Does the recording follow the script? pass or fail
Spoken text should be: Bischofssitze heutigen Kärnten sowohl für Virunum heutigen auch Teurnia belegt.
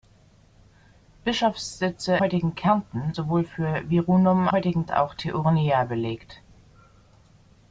pass